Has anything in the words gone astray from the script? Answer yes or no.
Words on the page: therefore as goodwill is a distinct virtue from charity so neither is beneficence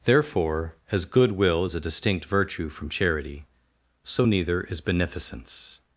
no